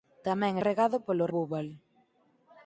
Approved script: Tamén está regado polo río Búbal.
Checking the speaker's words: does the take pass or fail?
fail